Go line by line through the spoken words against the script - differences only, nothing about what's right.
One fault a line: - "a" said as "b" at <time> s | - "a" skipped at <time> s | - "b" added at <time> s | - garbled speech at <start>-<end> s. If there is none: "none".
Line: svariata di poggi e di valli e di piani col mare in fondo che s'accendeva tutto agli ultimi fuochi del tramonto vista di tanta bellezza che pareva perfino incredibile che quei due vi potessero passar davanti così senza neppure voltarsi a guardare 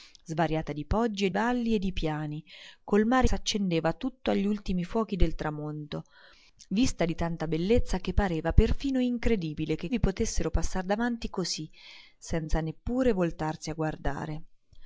- "di" skipped at 1.3 s
- "in fondo che" skipped at 3.3 s
- "quei due" skipped at 9.9 s